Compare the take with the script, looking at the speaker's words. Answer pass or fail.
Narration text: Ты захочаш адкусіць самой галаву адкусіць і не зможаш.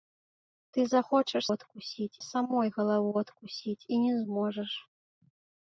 pass